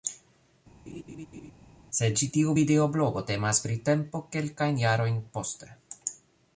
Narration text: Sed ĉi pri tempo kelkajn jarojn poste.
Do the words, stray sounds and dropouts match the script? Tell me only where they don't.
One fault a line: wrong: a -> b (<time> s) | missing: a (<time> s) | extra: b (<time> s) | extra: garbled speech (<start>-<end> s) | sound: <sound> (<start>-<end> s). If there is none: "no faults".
sound: laugh (0.9-1.5 s)
extra: tiu videoblogo temas (2.3 s)